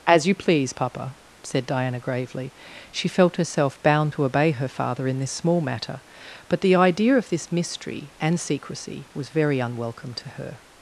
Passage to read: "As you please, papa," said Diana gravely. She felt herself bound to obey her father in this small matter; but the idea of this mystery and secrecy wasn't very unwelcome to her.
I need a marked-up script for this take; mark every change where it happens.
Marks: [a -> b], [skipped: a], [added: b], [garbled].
"As you please, papa," said Diana gravely. She felt herself bound to obey her father in this small matter; but the idea of this mystery and secrecy [wasn't -> was] very unwelcome to her.